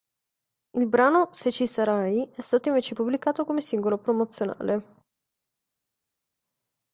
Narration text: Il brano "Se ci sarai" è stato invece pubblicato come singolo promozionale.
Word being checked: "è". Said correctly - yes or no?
yes